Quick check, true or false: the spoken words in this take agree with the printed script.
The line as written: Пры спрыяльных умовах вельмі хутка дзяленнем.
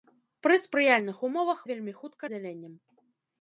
true